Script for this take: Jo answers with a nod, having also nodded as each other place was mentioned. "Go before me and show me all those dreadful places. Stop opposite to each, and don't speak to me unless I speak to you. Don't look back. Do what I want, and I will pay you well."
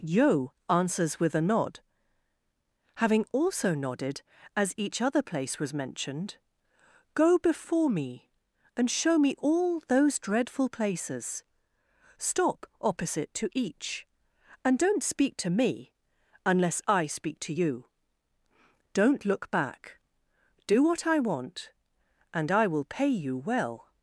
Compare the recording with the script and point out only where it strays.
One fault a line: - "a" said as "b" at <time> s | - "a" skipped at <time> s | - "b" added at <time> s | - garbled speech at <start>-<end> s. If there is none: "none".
- "Jo" said as "Yo" at 0.0 s